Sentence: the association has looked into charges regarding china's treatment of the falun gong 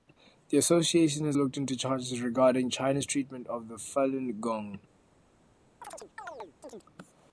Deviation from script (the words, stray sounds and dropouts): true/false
true